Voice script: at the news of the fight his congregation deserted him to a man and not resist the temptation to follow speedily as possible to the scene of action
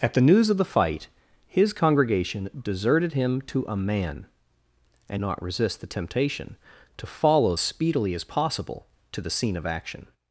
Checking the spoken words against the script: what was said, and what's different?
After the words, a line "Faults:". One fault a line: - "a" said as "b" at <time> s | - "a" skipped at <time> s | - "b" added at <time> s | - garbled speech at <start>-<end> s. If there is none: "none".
at the news of the fight his congregation deserted him to a man and not resist the temptation to follow speedily as possible to the scene of action
Faults:
none